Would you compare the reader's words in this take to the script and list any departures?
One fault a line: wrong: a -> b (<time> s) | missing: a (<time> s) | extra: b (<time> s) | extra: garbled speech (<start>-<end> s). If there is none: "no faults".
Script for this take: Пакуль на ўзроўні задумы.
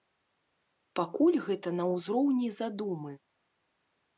extra: гэта (1.5 s)